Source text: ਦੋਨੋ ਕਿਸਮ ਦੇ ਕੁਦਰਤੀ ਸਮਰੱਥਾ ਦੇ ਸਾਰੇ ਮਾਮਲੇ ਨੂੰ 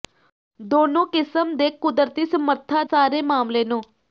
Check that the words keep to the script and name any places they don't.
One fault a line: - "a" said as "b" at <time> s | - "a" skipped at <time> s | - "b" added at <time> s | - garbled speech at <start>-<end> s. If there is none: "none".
- "ਦੇ" skipped at 2.8 s